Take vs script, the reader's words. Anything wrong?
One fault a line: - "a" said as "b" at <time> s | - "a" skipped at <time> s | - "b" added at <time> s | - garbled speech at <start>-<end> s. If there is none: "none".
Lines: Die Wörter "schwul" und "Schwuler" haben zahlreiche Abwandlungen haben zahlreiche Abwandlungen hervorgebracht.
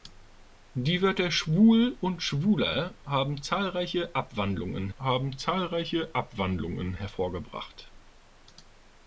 none